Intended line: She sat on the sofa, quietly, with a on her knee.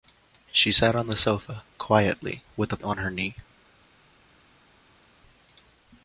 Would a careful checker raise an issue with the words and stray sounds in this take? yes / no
no